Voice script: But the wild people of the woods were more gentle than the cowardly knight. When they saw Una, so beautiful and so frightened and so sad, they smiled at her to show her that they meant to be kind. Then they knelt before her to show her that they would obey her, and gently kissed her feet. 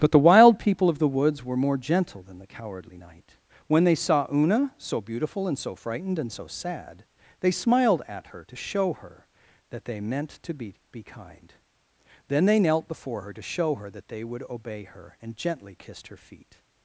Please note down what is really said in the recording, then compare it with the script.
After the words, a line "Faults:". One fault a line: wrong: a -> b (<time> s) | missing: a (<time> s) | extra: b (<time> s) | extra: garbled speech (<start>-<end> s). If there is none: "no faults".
But the wild people of the woods were more gentle than the cowardly knight. When they saw Una, so beautiful and so frightened and so sad, they smiled at her to show her that they meant to be be kind. Then they knelt before her to show her that they would obey her, and gently kissed her feet.
Faults:
extra: be (10.9 s)